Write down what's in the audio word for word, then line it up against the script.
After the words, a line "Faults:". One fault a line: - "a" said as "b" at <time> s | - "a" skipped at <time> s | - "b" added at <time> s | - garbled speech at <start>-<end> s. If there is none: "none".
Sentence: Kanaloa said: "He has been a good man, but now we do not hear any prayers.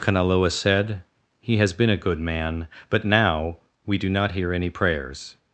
Kanaloa said: "He has been a good man, but now we do not hear any prayers.
Faults:
none